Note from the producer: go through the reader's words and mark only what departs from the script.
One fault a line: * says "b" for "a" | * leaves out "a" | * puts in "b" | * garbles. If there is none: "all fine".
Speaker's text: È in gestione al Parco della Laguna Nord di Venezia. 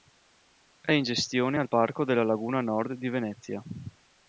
all fine